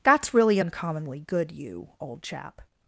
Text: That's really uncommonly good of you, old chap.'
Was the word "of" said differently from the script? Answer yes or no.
yes